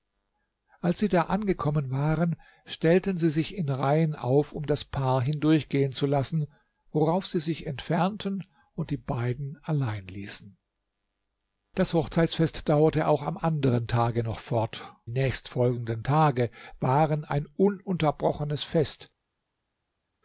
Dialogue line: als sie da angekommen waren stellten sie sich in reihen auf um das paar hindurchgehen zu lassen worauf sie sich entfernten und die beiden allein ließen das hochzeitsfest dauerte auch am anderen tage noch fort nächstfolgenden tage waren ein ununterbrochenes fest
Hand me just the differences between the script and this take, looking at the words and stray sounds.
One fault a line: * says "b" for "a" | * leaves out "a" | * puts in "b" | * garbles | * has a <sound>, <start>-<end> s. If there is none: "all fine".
all fine